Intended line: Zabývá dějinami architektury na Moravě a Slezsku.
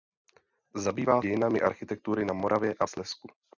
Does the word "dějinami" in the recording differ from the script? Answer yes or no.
no